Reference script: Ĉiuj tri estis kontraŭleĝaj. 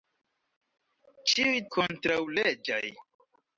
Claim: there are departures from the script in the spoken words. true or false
true